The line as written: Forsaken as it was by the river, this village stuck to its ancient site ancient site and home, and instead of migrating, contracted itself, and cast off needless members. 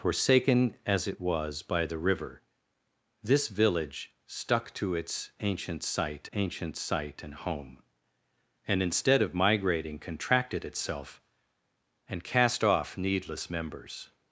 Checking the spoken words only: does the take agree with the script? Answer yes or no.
yes